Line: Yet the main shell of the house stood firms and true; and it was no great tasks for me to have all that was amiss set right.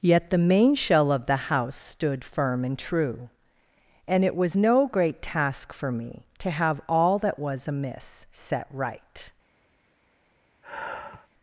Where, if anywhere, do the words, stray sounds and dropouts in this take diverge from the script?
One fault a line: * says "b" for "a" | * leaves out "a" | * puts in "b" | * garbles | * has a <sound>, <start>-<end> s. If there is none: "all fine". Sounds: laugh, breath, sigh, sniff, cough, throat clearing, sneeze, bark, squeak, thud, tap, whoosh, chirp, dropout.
* says "firm" for "firms"
* says "task" for "tasks"
* has a sigh, 10.6-11.3 s